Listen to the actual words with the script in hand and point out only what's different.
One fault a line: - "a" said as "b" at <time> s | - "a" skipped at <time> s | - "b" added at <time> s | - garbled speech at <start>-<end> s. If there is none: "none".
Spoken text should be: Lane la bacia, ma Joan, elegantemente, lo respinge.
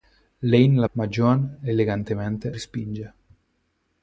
- "bacia" skipped at 0.9 s
- "lo" skipped at 2.5 s